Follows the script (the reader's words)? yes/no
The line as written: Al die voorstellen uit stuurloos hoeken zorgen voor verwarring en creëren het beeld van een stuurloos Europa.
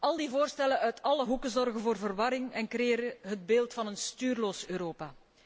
no